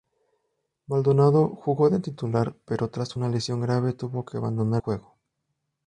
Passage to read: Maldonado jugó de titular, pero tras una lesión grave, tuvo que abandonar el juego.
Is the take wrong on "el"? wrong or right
wrong